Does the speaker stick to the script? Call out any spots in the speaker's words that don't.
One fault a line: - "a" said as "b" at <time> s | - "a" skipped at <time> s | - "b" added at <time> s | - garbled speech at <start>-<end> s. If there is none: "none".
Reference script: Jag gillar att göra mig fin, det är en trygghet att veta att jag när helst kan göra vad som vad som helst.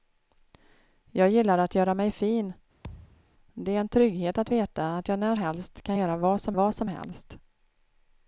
none